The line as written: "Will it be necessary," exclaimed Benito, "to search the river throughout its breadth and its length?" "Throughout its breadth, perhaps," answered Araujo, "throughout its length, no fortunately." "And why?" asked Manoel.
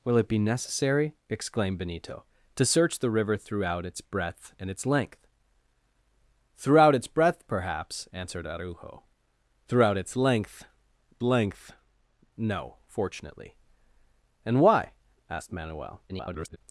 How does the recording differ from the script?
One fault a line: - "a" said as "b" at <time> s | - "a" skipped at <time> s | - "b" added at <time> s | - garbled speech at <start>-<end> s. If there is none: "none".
- "length" added at 11.2 s
- garbled speech at 16.1-16.6 s